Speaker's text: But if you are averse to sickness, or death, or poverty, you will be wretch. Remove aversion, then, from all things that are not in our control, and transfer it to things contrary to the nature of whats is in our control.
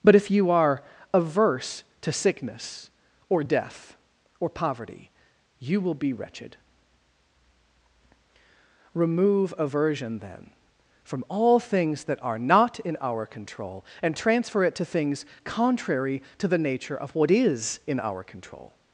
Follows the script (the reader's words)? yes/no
no